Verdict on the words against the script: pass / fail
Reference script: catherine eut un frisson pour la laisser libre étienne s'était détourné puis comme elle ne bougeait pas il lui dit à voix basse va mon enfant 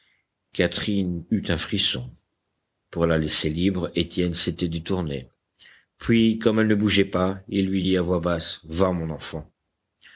pass